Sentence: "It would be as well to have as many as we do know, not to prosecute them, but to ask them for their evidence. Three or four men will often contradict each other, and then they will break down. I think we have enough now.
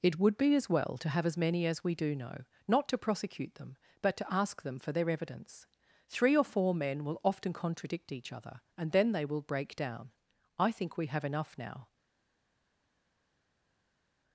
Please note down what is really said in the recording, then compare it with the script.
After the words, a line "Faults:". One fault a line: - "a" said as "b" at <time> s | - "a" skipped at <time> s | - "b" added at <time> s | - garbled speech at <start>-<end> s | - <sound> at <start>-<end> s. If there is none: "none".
"It would be as well to have as many as we do know, not to prosecute them, but to ask them for their evidence. Three or four men will often contradict each other, and then they will break down. I think we have enough now.
Faults:
none